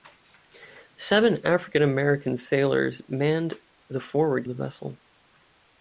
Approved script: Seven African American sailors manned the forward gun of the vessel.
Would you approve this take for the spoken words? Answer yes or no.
no